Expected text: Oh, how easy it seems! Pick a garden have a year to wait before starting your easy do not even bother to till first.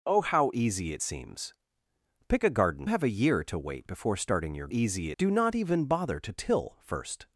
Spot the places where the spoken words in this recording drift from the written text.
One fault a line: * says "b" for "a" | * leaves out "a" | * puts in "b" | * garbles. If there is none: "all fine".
all fine